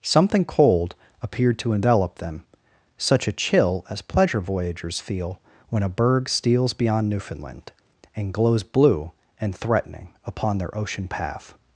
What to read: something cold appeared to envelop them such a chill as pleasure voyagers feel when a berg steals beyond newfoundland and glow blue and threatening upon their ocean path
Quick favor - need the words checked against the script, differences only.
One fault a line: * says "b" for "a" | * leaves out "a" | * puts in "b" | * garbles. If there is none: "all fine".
* says "glows" for "glow"